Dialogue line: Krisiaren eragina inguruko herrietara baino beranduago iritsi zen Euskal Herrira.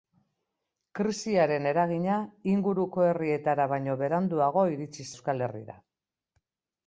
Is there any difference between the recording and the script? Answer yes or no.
yes